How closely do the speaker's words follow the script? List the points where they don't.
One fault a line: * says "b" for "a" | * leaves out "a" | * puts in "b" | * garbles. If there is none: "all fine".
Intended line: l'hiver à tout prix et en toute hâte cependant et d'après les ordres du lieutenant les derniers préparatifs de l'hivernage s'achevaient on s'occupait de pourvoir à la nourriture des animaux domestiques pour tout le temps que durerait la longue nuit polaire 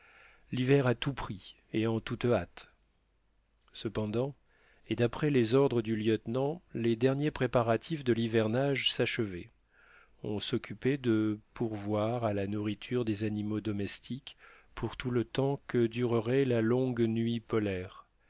all fine